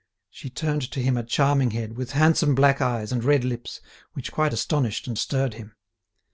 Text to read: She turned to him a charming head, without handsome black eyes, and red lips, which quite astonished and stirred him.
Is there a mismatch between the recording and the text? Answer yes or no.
yes